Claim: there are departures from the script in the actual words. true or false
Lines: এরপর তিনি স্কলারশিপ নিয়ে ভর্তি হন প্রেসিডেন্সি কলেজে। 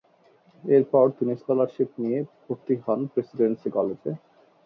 false